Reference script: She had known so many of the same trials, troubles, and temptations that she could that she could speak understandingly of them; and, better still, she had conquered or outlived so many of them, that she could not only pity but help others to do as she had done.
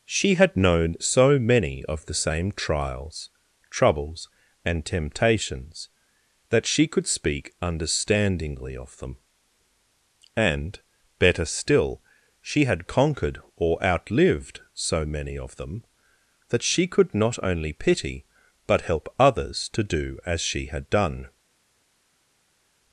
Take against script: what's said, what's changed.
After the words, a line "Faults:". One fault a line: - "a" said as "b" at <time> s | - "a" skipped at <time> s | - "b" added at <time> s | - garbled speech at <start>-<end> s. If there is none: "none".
She had known so many of the same trials, troubles, and temptations that she could speak understandingly of them; and, better still, she had conquered or outlived so many of them, that she could not only pity but help others to do as she had done.
Faults:
- "that she could" skipped at 7.1 s